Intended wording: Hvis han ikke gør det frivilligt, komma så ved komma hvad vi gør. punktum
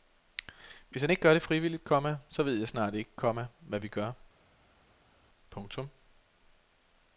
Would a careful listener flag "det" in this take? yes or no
no